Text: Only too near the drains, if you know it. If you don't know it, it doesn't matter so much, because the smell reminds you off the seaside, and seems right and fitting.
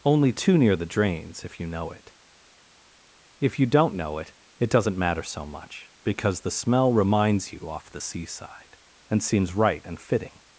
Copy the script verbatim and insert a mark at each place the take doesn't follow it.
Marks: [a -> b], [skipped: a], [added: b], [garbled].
Only too near the drains, if you know it. If you don't know it, it doesn't matter so much, because the smell reminds you off the seaside, and seems right and fitting.